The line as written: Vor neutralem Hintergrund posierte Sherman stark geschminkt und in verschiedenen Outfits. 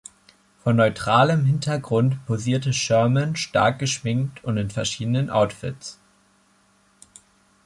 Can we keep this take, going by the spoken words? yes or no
yes